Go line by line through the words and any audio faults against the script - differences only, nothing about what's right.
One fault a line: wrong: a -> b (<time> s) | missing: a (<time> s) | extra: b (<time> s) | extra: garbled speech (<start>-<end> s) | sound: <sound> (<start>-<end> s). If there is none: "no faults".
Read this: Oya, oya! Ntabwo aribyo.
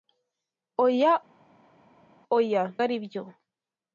missing: Ntabwo (2.6 s)